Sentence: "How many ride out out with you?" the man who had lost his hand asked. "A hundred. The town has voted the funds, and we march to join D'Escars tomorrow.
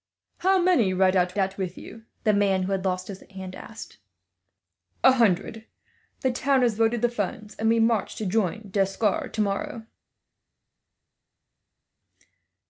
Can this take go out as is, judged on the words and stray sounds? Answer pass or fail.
pass